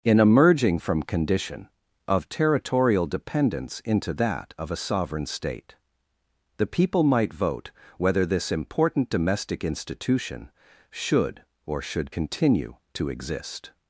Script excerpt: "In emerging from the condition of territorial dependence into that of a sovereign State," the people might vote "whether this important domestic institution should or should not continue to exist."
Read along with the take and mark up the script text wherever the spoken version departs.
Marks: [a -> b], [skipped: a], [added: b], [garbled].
"In emerging from [skipped: the] condition of territorial dependence into that of a sovereign State," the people might vote "whether this important domestic institution should or should [skipped: not] continue to exist."